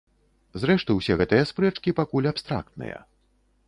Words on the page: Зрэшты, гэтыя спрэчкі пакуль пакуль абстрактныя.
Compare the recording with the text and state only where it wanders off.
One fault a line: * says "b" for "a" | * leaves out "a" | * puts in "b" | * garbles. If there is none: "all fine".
* puts in "усе"
* leaves out "пакуль"